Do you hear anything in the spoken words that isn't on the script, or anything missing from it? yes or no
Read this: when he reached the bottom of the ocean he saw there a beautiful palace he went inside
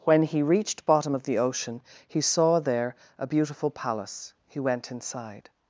yes